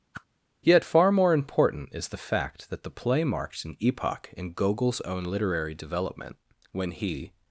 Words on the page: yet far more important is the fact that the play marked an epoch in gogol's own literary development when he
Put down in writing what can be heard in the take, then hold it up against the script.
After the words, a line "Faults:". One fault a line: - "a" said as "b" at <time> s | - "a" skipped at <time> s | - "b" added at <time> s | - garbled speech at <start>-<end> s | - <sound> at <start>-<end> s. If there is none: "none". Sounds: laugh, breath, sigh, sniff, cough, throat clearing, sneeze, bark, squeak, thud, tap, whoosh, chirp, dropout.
yet far more important is the fact that the play marked an epoch in gogol's own literary development when he
Faults:
- whoosh at 0.1-0.3 s